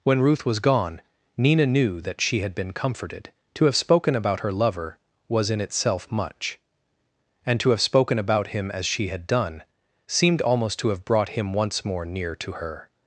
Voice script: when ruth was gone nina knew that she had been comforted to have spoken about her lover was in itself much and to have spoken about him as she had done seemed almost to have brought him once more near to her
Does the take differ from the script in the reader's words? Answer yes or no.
no